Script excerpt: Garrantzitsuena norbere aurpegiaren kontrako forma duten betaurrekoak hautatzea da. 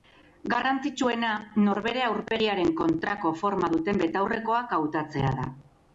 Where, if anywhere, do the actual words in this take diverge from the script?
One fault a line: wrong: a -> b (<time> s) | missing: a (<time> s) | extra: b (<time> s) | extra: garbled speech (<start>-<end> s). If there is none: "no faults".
no faults